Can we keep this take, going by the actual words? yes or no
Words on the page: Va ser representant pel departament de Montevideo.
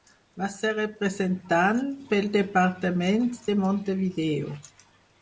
yes